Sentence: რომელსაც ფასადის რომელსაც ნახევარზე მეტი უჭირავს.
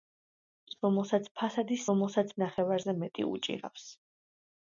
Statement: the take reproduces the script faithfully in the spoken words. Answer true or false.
true